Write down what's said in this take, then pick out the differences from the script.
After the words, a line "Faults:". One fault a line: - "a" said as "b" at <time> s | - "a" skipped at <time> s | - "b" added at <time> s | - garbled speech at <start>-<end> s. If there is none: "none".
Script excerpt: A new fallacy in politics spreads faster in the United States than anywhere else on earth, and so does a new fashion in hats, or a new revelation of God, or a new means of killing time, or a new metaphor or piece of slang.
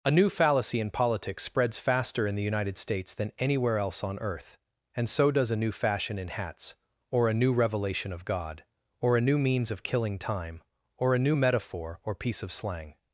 A new fallacy in politics spreads faster in the United States than anywhere else on earth, and so does a new fashion in hats, or a new revelation of God, or a new means of killing time, or a new metaphor or piece of slang.
Faults:
none